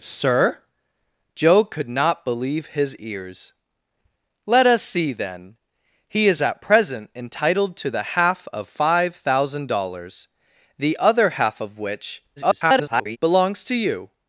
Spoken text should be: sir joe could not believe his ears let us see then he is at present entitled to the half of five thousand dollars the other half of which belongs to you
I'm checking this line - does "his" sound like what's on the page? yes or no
yes